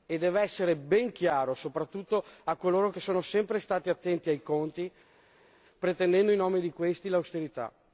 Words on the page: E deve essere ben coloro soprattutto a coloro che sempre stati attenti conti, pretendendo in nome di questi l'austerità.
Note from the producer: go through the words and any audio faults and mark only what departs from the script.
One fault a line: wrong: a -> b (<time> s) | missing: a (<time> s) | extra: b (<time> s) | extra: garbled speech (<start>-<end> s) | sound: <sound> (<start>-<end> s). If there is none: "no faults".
wrong: coloro -> chiaro (1.1 s)
extra: sono (3.0 s)
extra: ai (4.3 s)